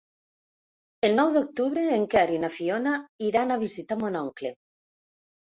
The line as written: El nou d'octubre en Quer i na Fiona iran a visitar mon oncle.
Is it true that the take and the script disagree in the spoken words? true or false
false